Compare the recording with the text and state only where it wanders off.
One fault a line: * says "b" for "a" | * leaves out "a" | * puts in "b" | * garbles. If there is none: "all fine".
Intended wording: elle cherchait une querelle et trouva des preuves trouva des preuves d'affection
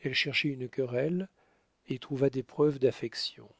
* leaves out "trouva des preuves"